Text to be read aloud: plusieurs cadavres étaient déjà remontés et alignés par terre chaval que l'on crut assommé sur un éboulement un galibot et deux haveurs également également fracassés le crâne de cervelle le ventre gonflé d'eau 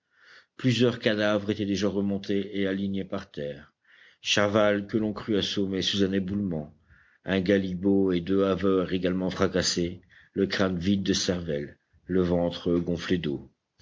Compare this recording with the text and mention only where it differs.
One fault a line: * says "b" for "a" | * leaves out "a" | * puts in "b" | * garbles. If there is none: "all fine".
* says "sous" for "sur"
* leaves out "également"
* puts in "vide"